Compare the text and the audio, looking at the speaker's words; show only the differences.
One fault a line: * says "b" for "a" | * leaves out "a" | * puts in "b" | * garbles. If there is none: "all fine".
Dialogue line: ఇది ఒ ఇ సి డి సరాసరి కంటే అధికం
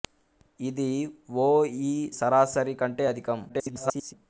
* leaves out "సి డి"
* garbles